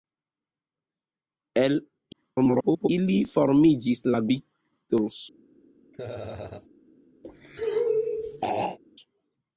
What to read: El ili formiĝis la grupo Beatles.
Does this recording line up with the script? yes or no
no